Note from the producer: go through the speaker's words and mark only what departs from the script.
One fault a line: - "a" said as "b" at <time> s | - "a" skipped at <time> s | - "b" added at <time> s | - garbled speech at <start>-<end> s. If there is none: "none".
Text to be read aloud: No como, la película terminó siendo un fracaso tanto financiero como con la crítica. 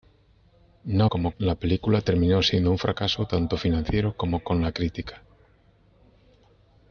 none